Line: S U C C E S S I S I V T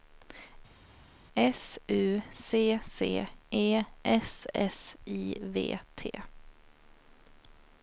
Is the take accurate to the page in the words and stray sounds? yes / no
no